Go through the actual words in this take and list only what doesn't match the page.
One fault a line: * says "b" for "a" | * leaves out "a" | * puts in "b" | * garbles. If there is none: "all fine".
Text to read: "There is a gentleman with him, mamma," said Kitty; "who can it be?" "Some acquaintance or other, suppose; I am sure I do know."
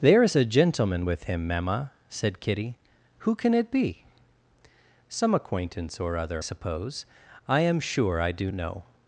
all fine